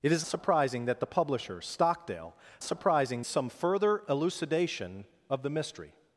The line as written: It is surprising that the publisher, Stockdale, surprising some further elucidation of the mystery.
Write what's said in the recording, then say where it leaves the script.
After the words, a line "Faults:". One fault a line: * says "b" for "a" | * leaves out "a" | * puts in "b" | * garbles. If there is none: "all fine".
It is surprising that the publisher, Stockdale, surprising some further elucidation of the mystery.
Faults:
all fine